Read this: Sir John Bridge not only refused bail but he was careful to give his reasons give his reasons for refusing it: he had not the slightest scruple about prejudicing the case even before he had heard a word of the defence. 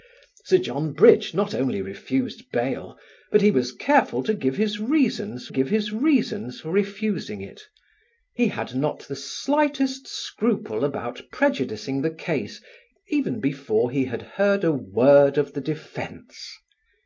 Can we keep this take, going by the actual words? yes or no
yes